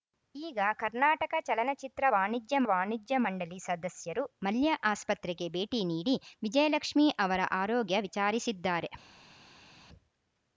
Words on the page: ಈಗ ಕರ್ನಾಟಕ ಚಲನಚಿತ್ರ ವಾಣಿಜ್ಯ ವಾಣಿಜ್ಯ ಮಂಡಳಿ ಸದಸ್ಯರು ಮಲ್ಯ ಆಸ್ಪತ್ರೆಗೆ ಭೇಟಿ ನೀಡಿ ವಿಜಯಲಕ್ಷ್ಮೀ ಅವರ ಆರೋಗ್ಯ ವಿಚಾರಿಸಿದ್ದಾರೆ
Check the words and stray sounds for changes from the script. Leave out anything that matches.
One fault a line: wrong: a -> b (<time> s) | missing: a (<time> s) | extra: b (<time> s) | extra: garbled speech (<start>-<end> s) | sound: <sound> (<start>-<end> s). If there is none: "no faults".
no faults